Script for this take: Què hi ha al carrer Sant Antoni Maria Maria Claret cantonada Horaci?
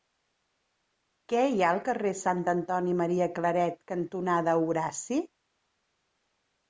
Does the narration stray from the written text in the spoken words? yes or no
yes